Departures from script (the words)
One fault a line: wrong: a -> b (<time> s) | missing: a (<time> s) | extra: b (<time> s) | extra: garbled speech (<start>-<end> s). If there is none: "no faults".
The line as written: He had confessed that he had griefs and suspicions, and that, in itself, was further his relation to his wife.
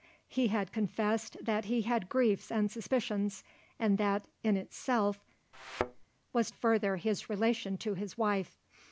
no faults